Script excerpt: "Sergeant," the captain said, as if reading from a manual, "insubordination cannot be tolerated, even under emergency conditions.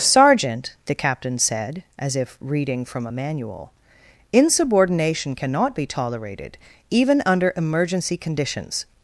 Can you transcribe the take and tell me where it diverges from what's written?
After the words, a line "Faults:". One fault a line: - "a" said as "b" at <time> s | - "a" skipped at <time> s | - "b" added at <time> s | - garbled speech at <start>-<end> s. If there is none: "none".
"Sergeant," the captain said, as if reading from a manual, "insubordination cannot be tolerated, even under emergency conditions.
Faults:
none